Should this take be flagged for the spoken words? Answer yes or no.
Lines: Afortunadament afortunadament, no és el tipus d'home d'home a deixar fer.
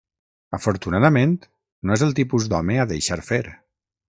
yes